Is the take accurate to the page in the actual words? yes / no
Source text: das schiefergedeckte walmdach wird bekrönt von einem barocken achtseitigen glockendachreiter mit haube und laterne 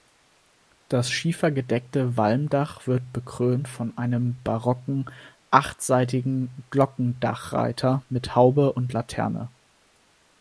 yes